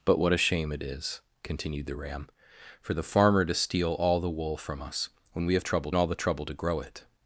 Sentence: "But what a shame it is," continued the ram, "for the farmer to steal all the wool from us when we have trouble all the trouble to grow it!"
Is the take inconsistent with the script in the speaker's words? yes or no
no